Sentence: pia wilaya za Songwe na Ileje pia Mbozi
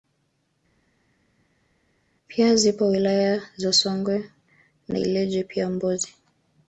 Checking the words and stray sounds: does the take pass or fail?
fail